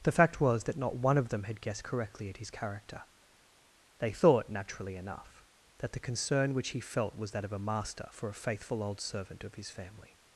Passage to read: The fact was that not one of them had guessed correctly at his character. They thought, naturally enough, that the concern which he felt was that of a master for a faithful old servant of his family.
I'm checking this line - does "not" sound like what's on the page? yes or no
yes